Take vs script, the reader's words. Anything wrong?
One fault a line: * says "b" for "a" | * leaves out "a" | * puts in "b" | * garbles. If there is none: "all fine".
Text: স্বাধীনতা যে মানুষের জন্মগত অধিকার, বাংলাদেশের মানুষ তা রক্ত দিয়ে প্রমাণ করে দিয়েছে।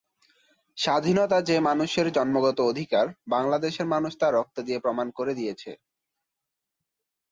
all fine